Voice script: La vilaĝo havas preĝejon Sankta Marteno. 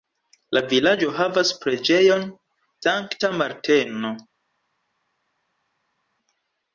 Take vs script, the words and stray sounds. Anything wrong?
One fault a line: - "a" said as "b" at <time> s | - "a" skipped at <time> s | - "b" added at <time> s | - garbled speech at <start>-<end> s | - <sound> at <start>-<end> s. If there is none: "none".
none